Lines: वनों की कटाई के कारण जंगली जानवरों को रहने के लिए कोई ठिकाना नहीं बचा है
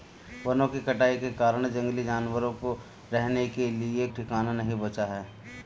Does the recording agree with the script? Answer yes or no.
no